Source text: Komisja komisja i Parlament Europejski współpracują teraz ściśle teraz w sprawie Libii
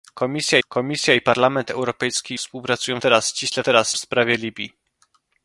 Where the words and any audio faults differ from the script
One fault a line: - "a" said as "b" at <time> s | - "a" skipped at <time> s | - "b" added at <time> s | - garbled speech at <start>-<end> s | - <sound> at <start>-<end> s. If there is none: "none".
none